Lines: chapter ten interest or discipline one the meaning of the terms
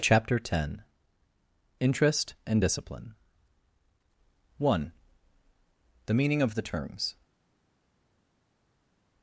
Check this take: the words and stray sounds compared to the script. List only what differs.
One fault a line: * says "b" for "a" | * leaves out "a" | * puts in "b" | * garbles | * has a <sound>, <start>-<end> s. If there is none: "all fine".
* says "and" for "or"